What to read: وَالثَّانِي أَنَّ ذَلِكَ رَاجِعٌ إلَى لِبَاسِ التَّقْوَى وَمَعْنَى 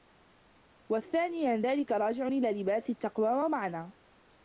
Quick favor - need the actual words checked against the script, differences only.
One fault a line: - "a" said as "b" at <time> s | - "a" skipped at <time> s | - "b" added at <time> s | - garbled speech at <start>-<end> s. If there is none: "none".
none